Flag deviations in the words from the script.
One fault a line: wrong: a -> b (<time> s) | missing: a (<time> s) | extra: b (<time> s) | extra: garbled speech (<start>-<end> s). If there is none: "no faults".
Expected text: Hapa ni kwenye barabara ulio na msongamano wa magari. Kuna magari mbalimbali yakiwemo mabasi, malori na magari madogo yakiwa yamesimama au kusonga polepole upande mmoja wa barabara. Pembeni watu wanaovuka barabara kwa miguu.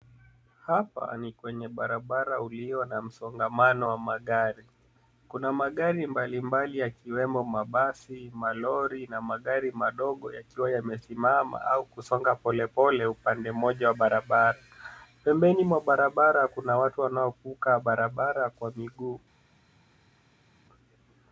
extra: mwa barabara kuna (15.6 s)